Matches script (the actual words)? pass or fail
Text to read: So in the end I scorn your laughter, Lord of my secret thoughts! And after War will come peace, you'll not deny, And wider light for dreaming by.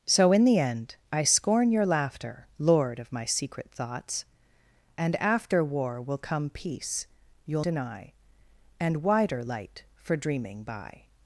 fail